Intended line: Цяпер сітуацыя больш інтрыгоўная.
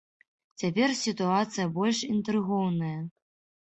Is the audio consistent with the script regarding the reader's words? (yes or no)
yes